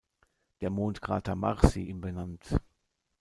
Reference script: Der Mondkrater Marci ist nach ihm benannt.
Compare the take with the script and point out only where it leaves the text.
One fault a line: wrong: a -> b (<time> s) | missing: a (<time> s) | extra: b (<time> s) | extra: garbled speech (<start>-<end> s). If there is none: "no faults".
missing: ist nach (1.8 s)